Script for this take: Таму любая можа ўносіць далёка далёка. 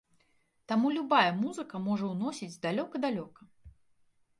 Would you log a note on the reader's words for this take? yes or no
yes